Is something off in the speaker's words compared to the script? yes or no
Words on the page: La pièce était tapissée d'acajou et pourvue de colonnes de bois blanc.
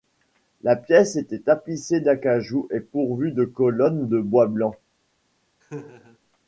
no